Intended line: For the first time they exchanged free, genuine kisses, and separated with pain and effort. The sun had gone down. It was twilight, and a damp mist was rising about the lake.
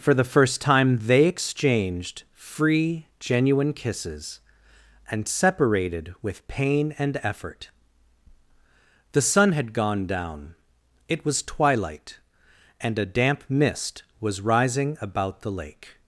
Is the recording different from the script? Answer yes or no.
no